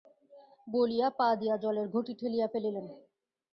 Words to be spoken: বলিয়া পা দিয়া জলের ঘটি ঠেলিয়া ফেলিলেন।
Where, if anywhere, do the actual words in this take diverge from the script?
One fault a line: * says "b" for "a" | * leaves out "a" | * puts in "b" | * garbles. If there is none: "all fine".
all fine